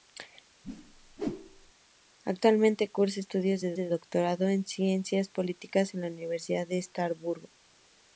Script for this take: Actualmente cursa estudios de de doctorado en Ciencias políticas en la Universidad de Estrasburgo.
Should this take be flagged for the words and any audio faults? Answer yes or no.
yes